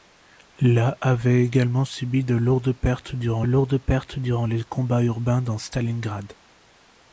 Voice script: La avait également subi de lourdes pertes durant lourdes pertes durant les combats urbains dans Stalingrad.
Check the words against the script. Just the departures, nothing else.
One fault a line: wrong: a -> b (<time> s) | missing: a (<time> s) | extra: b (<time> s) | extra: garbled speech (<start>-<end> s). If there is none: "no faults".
no faults